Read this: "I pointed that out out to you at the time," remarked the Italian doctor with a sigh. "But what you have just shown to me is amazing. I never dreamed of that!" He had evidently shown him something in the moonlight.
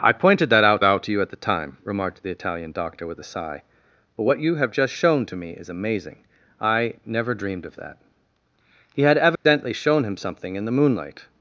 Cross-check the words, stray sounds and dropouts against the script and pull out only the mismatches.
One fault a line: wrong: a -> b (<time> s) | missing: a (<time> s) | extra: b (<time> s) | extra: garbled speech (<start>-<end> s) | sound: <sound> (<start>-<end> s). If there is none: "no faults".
sound: dropout (9.4-9.5 s)